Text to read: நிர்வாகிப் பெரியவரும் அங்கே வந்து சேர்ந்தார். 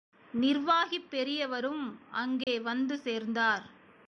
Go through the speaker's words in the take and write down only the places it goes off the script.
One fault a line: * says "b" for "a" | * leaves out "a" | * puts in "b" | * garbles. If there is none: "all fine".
all fine